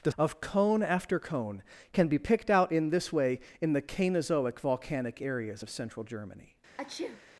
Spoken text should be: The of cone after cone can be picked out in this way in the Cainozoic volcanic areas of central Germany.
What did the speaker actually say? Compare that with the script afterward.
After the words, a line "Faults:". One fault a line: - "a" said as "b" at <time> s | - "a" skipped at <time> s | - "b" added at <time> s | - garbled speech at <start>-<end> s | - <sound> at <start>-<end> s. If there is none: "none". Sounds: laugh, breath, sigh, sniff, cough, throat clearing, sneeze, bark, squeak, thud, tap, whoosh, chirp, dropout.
The of cone after cone can be picked out in this way in the Cainozoic volcanic areas of central Germany.
Faults:
- sneeze at 6.8-7.2 s